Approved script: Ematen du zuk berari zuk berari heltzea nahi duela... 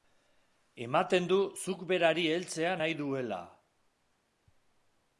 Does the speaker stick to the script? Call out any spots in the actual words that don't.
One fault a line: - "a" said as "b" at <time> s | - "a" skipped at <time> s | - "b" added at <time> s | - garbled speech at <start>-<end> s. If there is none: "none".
- "zuk berari" skipped at 2.2 s